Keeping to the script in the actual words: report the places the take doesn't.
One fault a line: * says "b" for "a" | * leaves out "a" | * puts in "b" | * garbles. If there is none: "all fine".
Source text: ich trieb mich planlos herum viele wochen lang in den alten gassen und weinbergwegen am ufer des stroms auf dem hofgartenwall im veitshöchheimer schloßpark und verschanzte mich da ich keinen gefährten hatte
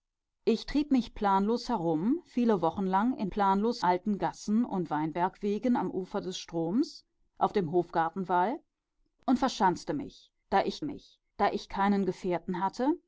* says "planlos" for "den"
* says "und verschanzte mich da ich" for "im veitshöchheimer schloßpark und verschanzte"